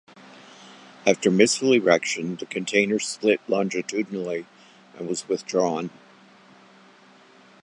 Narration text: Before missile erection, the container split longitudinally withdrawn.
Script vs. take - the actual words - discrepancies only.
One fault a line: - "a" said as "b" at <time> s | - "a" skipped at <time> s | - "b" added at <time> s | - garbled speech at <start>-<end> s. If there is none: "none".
- "Before" said as "After" at 1.1 s
- "and was" added at 5.0 s